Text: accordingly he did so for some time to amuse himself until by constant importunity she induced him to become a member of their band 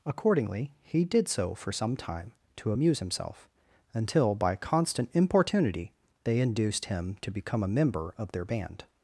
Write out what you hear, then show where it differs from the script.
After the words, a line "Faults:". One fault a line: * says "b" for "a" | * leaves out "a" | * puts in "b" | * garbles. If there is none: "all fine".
accordingly he did so for some time to amuse himself until by constant importunity they induced him to become a member of their band
Faults:
* says "they" for "she"